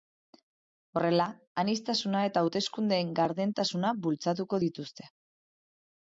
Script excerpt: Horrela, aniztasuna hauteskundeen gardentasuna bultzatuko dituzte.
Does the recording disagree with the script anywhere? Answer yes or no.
yes